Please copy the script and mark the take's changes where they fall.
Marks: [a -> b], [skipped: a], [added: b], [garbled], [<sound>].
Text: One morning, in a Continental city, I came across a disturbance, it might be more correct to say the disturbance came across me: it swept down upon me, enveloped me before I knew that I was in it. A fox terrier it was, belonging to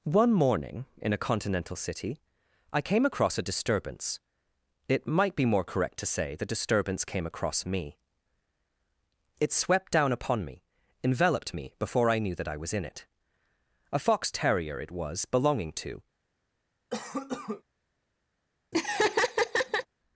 One morning, in a Continental city, I came across a disturbance, it might be more correct to say the disturbance came across me: it swept down upon me, enveloped me before I knew that I was in it. A fox terrier it was, belonging to [cough] [laugh]